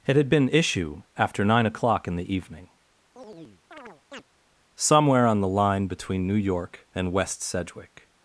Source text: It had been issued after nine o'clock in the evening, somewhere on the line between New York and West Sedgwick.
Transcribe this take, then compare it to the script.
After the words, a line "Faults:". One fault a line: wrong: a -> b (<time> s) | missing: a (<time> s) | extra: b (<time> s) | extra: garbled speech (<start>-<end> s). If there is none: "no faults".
It had been issue after nine o'clock in the evening, somewhere on the line between New York and West Sedgwick.
Faults:
wrong: issued -> issue (0.5 s)